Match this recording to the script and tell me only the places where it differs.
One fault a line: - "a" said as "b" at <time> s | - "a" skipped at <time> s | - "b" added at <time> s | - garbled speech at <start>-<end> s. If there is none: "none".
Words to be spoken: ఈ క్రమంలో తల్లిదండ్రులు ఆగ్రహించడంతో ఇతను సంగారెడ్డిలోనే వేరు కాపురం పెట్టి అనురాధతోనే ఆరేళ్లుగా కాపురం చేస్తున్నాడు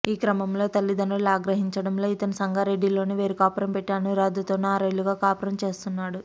none